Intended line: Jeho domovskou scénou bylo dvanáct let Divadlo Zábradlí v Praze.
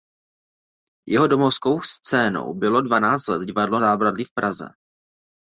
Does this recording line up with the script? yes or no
yes